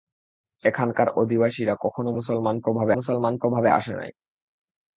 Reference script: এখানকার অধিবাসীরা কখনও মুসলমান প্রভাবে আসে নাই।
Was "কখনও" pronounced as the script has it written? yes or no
yes